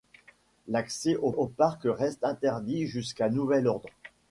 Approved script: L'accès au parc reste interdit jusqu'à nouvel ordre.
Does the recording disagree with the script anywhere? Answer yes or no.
yes